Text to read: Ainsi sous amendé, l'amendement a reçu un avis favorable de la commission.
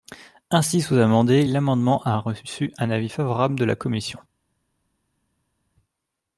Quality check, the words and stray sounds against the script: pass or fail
pass